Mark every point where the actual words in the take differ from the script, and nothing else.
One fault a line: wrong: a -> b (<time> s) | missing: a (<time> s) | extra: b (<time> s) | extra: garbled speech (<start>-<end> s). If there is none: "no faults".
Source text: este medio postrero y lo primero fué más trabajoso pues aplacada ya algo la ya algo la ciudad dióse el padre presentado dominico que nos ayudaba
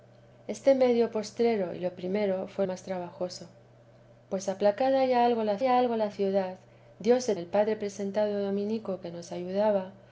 no faults